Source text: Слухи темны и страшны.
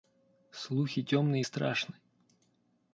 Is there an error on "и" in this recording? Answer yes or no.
no